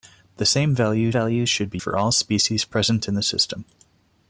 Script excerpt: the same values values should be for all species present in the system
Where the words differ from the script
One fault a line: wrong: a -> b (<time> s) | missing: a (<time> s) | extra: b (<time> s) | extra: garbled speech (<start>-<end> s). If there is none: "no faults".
no faults